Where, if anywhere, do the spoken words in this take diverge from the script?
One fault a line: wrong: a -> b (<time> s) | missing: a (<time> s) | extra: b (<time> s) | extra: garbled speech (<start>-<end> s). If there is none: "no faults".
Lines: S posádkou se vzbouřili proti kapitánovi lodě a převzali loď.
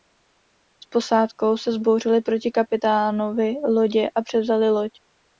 no faults